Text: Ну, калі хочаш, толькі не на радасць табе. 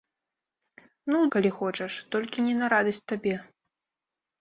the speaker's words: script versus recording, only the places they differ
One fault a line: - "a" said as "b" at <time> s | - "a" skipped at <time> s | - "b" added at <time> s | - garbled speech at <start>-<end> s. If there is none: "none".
none